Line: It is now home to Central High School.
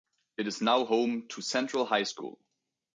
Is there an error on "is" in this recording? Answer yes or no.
no